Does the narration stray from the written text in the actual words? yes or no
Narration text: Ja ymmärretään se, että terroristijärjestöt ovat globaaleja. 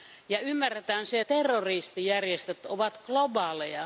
yes